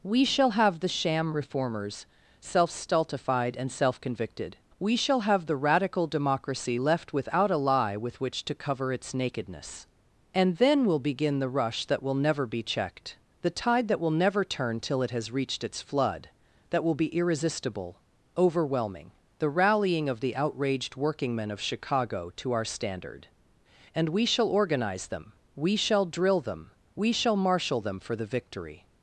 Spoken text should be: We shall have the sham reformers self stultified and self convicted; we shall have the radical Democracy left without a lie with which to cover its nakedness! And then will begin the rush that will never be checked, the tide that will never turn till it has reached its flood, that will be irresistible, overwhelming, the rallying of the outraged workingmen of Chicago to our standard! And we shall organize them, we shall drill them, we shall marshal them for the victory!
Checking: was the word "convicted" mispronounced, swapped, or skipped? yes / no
no